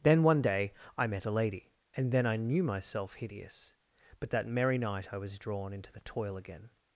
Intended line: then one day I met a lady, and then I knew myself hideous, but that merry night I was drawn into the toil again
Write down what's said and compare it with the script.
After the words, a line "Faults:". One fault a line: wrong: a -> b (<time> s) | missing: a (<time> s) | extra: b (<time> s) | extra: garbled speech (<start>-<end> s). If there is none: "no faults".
then one day I met a lady, and then I knew myself hideous, but that merry night I was drawn into the toil again
Faults:
no faults